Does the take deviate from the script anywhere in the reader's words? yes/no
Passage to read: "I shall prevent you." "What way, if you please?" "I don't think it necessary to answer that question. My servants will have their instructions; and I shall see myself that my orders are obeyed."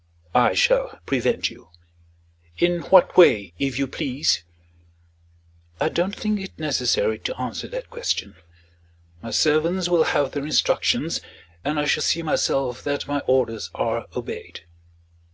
yes